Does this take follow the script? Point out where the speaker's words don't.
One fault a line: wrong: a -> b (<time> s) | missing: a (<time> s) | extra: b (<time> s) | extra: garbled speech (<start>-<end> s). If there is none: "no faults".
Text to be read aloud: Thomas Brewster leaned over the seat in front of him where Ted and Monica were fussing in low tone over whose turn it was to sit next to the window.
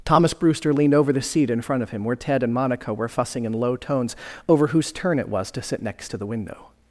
wrong: tone -> tones (3.8 s)